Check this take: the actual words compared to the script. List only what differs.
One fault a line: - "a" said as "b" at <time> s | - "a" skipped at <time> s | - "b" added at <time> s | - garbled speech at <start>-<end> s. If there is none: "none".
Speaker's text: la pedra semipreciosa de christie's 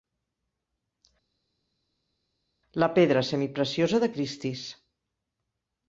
none